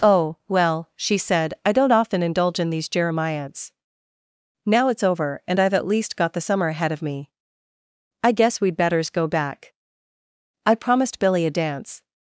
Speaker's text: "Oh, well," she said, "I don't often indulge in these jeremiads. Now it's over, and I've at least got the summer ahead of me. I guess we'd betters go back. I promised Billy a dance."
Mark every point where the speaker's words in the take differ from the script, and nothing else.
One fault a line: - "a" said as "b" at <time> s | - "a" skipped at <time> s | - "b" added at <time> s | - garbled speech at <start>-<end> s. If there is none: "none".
none